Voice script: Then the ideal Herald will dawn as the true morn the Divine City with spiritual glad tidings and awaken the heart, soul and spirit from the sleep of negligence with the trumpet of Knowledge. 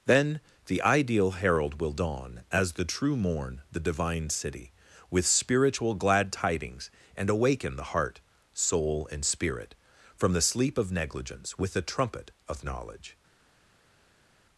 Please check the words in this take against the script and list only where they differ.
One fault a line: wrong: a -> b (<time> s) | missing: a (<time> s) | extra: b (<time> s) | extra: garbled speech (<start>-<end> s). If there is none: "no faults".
no faults